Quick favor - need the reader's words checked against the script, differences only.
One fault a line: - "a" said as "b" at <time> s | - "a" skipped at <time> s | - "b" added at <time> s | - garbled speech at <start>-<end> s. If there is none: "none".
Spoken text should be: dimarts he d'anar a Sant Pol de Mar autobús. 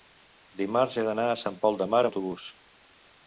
none